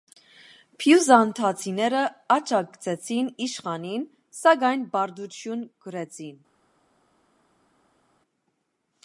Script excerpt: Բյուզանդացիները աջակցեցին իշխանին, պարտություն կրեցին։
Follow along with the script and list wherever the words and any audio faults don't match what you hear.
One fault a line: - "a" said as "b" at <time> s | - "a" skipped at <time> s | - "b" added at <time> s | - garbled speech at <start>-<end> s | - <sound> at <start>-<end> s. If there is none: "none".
- "սակայն" added at 4.4 s